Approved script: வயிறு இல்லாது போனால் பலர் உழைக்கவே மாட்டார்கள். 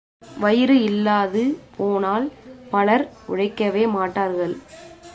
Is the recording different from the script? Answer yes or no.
no